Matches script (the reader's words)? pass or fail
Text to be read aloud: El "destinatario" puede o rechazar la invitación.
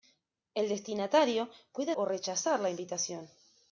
pass